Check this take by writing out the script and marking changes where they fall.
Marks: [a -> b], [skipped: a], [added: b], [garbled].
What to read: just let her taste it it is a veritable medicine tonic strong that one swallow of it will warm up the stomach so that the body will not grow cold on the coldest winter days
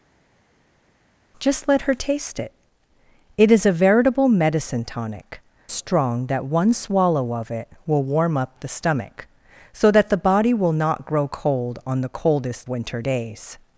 just let her taste it it is a veritable medicine tonic strong that one swallow of it will warm up the stomach so that the body will not grow cold on the coldest winter days